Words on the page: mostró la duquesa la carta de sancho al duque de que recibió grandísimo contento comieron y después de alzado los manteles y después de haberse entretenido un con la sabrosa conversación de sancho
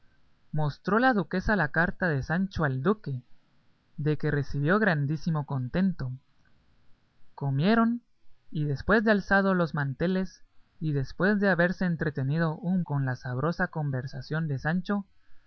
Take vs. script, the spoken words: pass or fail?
pass